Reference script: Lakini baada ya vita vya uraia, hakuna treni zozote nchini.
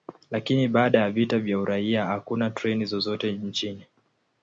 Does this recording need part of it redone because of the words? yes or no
no